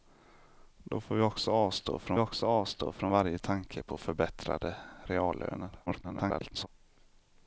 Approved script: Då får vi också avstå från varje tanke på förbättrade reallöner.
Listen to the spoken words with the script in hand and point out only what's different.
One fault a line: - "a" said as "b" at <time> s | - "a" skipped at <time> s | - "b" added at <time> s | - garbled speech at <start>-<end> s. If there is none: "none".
- "också avstå från" added at 2.2 s
- garbled speech at 5.9-6.7 s